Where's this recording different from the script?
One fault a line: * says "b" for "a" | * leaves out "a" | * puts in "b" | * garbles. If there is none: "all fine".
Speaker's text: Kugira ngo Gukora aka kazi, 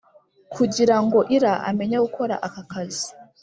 * puts in "Ira amenye"